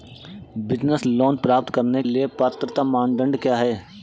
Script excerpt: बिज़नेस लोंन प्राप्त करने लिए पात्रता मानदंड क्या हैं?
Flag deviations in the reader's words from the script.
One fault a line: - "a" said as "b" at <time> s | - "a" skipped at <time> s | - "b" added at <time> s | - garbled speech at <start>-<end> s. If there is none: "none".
none